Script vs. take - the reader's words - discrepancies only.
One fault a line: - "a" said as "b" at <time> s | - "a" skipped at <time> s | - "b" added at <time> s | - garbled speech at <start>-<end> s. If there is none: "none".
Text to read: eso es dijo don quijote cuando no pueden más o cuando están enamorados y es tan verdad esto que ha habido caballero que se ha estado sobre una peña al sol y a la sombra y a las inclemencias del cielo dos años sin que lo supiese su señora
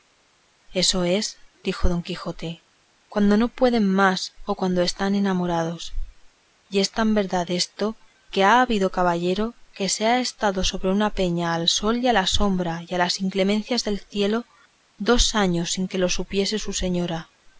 none